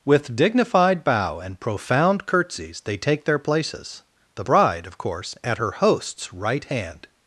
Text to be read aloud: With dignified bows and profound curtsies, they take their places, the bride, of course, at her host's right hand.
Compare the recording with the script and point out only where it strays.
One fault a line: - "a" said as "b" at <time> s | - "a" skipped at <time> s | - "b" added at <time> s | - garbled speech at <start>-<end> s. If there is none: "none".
- "bows" said as "bow" at 1.0 s